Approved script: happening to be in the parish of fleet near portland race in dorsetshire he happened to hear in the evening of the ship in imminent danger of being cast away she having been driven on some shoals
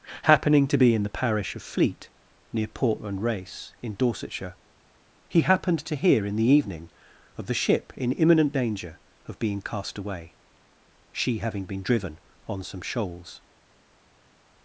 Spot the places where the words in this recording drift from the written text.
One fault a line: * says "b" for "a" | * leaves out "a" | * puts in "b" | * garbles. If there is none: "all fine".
all fine